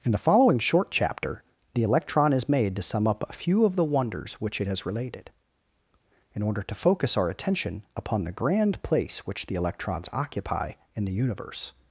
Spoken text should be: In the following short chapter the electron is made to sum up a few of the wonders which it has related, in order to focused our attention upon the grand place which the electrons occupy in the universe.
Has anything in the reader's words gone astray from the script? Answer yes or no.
yes